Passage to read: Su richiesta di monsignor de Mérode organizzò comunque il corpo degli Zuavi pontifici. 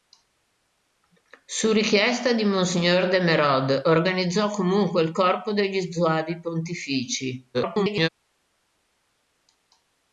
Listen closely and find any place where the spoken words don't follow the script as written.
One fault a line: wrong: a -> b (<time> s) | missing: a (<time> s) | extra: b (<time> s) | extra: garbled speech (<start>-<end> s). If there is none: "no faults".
extra: garbled speech (7.5-8.1 s)